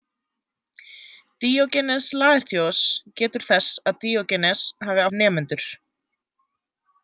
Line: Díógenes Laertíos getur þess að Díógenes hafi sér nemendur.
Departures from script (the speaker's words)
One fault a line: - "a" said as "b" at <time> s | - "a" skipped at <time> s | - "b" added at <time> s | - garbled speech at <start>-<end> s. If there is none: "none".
none